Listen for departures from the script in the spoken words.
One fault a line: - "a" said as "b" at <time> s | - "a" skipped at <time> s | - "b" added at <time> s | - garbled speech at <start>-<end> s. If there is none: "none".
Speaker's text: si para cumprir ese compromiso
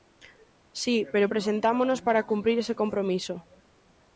- "pero presentámonos" added at 1.1 s